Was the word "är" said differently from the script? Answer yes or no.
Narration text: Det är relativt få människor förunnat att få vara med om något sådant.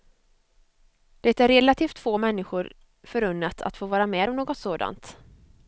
no